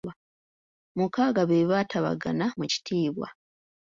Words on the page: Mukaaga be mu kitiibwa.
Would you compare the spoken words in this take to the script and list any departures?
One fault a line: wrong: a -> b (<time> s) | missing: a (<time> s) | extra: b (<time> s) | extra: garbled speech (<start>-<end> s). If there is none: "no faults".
extra: baatabagana (1.7 s)